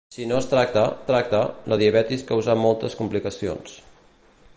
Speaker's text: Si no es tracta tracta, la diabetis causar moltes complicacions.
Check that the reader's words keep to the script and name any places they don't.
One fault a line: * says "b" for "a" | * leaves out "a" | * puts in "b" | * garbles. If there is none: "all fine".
all fine